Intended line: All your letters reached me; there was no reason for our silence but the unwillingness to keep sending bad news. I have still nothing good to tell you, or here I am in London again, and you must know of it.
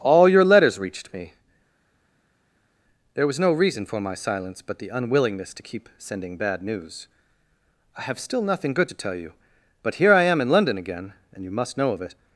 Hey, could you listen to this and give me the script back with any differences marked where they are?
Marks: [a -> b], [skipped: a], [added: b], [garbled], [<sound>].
All your letters reached me; there was no reason for [our -> my] silence but the unwillingness to keep sending bad news. I have still nothing good to tell you, [or -> but] here I am in London again, and you must know of it.